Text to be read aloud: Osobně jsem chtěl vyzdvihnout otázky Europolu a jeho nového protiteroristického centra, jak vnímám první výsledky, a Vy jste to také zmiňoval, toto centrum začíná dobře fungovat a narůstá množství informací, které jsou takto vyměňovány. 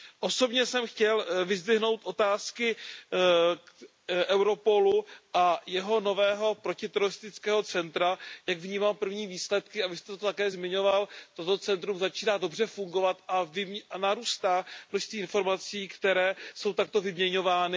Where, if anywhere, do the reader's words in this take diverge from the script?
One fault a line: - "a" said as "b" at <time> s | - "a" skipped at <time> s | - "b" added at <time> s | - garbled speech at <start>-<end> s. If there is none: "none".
none